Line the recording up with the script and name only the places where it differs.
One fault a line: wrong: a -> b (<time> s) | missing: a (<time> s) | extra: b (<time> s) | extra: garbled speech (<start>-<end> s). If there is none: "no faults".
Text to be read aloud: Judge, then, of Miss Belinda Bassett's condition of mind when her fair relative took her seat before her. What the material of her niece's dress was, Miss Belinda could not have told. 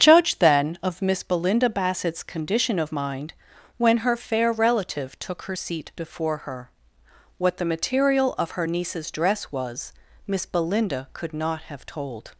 no faults